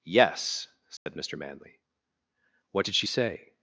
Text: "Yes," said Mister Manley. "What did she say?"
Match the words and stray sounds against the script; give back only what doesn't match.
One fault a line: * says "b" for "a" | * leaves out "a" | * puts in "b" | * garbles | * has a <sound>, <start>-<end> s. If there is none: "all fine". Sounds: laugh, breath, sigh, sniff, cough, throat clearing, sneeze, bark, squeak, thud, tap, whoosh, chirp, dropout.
* has a dropout, 1.0-1.1 s